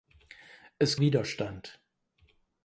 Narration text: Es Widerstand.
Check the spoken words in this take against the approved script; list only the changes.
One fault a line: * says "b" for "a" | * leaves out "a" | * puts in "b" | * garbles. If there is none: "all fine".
all fine